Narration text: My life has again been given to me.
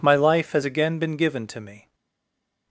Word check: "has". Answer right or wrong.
right